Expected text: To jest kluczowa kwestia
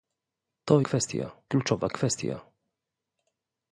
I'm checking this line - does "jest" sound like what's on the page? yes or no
no